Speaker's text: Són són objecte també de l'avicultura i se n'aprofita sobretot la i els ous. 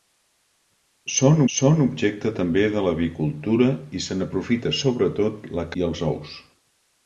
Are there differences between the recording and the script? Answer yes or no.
no